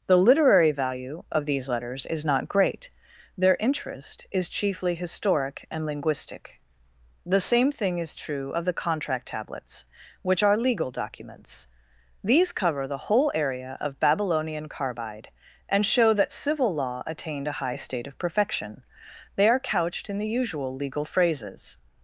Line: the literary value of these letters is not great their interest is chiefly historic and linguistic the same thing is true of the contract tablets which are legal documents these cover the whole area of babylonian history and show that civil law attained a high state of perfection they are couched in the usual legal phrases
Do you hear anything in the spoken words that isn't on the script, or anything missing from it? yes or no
yes